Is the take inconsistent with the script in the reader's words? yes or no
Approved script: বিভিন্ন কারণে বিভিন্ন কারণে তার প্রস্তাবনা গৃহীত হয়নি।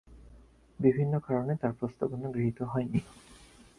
yes